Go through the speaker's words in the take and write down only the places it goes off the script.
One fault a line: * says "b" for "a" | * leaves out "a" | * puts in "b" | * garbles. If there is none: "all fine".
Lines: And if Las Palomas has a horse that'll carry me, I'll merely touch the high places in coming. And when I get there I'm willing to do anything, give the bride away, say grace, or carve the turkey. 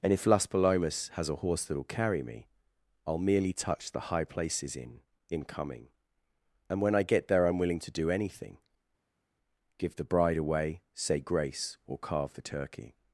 * puts in "in"